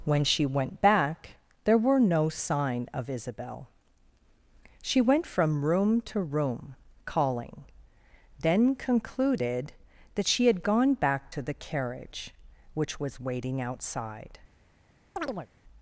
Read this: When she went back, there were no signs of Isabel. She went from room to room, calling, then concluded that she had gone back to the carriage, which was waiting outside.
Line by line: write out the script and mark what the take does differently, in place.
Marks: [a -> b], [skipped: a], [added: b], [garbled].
When she went back, there were no [signs -> sign] of Isabel. She went from room to room, calling, then concluded that she had gone back to the carriage, which was waiting outside.